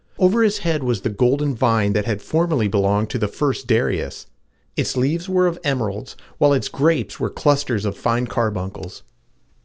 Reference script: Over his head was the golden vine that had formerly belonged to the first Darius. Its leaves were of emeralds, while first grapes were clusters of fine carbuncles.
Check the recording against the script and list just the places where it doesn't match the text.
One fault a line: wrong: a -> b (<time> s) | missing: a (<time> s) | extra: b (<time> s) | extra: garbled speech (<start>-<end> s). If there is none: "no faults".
wrong: first -> its (6.5 s)